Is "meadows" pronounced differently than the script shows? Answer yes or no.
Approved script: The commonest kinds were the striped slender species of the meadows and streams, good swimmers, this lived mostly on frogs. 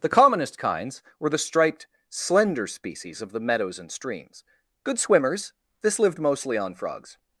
no